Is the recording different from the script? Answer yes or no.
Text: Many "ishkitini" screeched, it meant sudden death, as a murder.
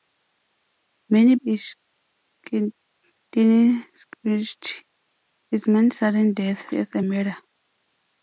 no